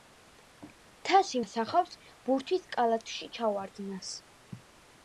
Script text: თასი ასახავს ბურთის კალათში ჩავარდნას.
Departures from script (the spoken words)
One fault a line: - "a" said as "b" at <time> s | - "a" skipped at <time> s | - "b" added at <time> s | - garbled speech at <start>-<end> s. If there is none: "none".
none